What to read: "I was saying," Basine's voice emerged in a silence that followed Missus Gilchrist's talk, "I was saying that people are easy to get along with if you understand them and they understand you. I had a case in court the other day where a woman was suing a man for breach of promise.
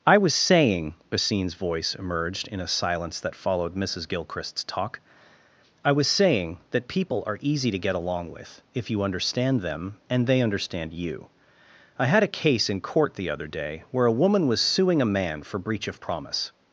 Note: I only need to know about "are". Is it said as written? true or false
true